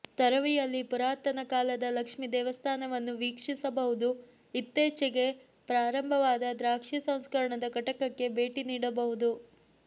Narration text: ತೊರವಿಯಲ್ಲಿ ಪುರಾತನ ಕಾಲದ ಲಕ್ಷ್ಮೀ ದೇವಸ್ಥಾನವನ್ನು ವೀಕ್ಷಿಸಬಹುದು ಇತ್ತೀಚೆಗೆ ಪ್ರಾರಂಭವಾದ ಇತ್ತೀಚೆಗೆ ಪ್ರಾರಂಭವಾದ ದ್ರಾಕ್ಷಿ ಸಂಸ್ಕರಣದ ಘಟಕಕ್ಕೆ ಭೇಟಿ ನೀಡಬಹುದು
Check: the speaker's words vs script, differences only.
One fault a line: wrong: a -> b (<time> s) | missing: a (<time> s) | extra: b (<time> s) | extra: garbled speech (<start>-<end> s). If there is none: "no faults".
missing: ಇತ್ತೀಚೆಗೆ ಪ್ರಾರಂಭವಾದ (6.5 s)